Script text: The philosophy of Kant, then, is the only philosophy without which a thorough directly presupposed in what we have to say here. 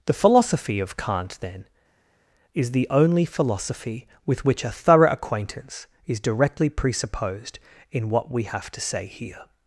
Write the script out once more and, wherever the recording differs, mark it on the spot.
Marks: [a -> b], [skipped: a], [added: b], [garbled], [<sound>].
The philosophy of Kant, then, is the only philosophy [without -> with] which a thorough [added: acquaintance is] directly presupposed in what we have to say here.